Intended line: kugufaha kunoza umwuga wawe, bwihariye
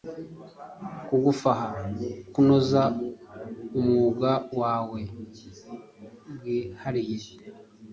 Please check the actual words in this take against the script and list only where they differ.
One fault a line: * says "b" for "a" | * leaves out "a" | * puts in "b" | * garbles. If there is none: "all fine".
all fine